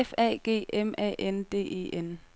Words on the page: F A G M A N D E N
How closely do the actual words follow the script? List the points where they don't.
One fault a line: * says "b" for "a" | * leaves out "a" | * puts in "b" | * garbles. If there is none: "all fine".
all fine